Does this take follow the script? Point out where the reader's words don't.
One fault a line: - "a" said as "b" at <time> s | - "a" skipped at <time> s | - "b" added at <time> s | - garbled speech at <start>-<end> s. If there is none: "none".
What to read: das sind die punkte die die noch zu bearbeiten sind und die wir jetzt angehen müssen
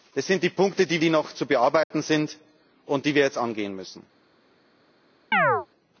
none